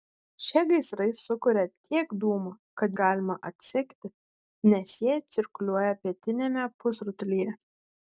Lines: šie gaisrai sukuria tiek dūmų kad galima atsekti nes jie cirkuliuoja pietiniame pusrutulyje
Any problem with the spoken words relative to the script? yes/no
no